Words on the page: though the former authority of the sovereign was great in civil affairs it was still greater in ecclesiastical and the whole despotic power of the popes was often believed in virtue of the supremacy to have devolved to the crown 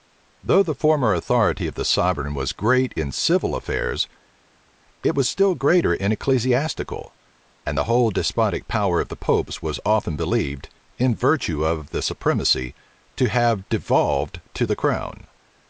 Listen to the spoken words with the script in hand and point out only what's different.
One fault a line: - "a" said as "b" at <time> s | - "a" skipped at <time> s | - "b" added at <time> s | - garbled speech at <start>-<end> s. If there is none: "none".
none